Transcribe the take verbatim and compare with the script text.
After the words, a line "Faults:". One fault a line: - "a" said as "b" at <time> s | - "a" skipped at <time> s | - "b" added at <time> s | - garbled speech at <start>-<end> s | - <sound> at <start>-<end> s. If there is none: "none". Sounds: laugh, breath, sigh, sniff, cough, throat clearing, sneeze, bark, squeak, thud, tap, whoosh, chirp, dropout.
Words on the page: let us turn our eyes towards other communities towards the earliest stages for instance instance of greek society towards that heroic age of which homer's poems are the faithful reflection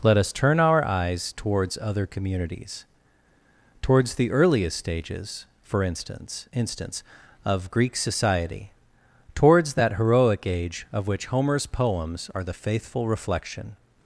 let us turn our eyes towards other communities towards the earliest stages for instance instance of greek society towards that heroic age of which homer's poems are the faithful reflection
Faults:
none